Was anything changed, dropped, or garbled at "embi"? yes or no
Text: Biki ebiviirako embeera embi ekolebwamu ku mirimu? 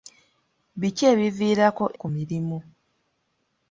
yes